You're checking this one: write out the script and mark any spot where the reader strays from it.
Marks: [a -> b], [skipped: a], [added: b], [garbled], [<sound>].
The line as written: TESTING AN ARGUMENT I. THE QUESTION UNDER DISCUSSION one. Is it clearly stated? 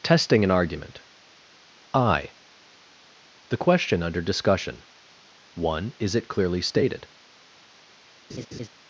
TESTING AN ARGUMENT I. THE QUESTION UNDER DISCUSSION one. Is it clearly stated? [laugh]